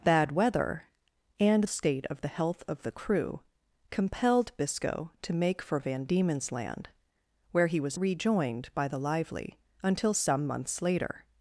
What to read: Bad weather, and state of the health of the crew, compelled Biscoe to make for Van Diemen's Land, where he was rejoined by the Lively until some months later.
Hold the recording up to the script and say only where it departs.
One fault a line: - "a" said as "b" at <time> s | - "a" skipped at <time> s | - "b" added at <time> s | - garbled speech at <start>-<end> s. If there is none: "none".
none